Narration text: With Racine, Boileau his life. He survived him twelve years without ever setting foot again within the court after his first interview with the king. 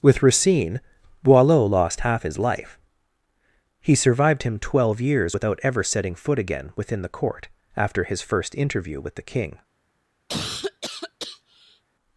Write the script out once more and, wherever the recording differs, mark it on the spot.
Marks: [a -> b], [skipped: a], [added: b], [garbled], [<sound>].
With Racine, Boileau [added: lost half] his life. He survived him twelve years without ever setting foot again within the court after his first interview with the king. [cough]